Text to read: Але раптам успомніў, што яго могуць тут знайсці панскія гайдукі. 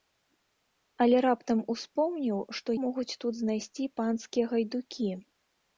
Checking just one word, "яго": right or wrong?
wrong